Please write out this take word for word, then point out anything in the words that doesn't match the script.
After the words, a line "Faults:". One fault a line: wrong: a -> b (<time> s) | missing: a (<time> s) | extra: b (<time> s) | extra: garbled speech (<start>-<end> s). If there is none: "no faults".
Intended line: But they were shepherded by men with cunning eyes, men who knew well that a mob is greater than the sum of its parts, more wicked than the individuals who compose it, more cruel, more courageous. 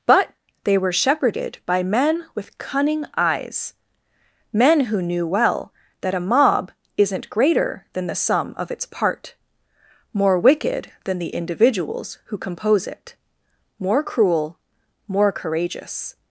But they were shepherded by men with cunning eyes, men who knew well that a mob isn't greater than the sum of its part, more wicked than the individuals who compose it, more cruel, more courageous.
Faults:
wrong: is -> isn't (7.0 s)
wrong: parts -> part (8.8 s)